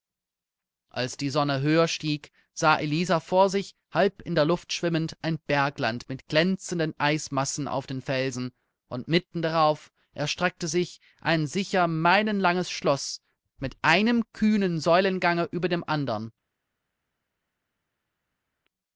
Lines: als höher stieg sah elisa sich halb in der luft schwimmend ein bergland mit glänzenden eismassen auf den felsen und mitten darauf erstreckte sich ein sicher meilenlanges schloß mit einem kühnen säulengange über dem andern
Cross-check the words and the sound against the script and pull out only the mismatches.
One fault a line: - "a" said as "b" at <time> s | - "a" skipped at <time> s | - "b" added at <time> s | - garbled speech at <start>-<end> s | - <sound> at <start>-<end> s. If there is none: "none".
- "die sonne" added at 1.1 s
- "vor" added at 3.2 s